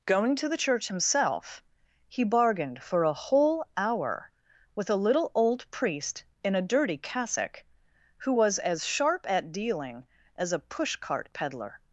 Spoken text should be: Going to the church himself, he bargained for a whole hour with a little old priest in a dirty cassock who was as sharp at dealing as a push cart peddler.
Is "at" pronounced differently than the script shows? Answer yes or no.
no